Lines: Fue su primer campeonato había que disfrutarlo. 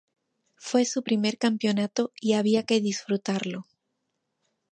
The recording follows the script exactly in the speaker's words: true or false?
false